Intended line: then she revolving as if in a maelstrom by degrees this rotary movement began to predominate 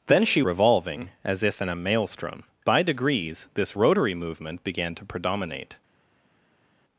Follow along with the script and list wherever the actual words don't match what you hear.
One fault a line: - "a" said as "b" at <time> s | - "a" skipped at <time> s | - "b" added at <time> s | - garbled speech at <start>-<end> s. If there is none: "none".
none